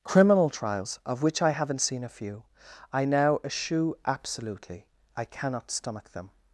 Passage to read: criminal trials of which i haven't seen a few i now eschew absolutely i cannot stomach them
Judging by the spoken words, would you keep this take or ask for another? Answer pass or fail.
pass